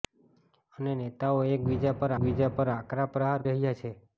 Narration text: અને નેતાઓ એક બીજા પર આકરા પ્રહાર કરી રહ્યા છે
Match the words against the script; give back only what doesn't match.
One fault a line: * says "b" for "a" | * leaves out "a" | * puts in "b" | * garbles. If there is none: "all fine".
* puts in "બીજા પર"
* leaves out "કરી"